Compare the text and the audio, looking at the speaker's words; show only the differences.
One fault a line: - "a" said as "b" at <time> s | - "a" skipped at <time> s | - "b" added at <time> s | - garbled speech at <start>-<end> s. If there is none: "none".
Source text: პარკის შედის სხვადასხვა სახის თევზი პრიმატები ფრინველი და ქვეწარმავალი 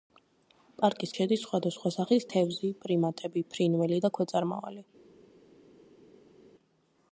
none